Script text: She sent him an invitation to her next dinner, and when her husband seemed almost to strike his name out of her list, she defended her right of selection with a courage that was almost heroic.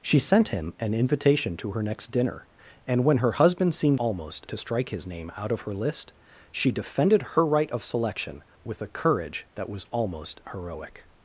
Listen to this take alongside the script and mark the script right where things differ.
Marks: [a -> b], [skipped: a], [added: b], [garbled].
She sent him an invitation to her next dinner, and when her husband seemed almost to strike his name out of her list, she defended her right of selection with a courage that was almost heroic.